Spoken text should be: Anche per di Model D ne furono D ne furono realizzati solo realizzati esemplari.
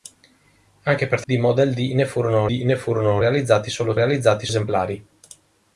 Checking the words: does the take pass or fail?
pass